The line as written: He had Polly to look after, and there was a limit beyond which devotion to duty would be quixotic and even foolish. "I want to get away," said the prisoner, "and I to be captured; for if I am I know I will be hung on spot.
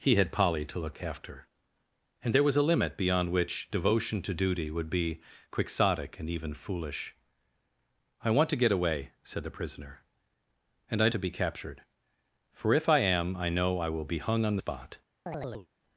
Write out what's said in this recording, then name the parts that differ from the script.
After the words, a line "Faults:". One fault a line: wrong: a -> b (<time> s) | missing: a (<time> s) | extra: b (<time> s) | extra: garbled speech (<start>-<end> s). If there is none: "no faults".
He had Polly to look after, and there was a limit beyond which devotion to duty would be quixotic and even foolish. "I want to get away," said the prisoner, "and I to be captured; for if I am I know I will be hung on spot.
Faults:
no faults